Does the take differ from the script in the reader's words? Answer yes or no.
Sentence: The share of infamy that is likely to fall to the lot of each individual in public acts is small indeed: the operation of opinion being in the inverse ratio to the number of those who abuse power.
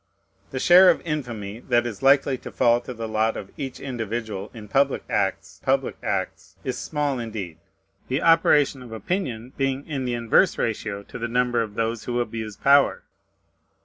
yes